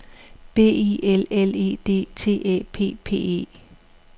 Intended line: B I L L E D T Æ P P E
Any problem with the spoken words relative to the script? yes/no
no